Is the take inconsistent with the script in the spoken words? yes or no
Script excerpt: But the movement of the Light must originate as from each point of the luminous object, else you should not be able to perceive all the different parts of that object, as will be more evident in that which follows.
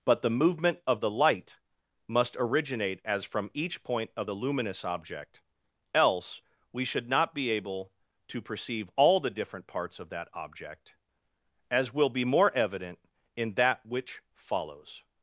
yes